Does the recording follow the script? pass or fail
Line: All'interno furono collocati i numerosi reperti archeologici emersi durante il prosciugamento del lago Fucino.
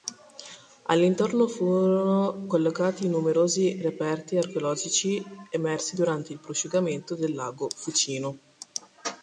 pass